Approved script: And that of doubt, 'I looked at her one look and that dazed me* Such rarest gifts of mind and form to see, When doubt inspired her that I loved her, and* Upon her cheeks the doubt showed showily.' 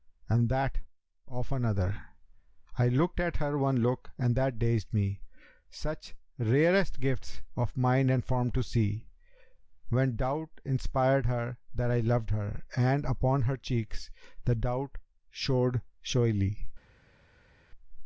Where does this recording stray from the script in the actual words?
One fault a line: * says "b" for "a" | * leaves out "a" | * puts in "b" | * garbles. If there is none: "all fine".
* says "another" for "doubt"